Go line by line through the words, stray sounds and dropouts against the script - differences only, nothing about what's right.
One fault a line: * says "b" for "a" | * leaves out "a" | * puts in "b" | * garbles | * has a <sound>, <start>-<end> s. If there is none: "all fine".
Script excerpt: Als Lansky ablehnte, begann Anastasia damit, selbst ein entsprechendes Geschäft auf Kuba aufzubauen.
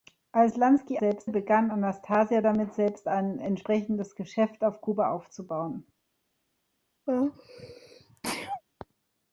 * says "selbst" for "ablehnte"
* has a sneeze, 7.1-8.6 s